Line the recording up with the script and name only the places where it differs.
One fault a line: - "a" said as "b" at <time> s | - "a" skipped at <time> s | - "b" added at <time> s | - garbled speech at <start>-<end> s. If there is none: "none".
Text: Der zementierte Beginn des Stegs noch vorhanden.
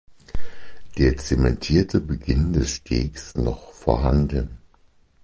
none